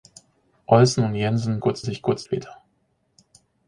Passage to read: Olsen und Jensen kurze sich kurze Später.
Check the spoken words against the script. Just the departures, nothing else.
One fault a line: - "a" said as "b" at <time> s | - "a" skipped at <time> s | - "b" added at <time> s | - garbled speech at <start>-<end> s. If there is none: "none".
none